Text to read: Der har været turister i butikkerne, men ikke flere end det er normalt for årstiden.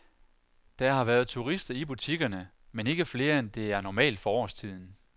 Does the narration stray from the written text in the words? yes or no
no